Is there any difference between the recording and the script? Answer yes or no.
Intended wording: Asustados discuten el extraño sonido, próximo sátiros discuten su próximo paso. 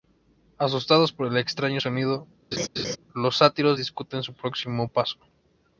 yes